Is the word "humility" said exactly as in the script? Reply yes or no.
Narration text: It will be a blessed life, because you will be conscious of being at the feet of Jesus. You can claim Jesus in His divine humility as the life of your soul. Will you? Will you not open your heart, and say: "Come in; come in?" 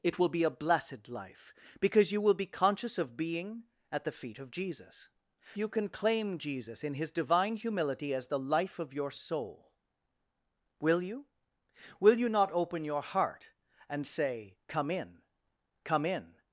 yes